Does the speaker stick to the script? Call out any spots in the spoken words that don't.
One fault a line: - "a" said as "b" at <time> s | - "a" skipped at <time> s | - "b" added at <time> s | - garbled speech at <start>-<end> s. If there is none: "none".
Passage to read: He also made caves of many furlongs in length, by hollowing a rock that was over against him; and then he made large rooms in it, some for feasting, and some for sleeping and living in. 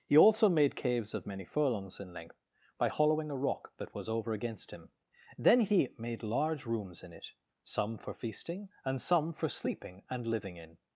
- "and" skipped at 4.9 s